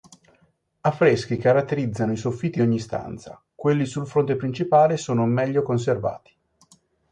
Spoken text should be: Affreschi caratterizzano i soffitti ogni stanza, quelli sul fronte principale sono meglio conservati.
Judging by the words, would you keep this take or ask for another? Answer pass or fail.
pass